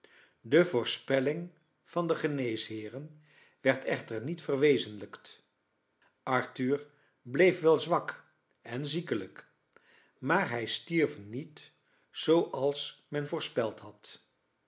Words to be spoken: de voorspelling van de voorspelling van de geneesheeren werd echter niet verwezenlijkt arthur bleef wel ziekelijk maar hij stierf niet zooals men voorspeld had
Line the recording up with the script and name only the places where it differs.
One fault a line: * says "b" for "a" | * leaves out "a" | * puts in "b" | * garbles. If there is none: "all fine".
* leaves out "voorspelling van de"
* puts in "zwak en"